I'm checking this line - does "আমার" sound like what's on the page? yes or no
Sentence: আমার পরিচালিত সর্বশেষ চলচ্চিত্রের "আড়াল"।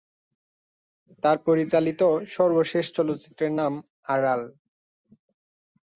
no